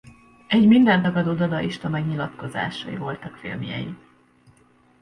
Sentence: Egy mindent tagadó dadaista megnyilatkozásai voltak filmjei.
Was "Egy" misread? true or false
false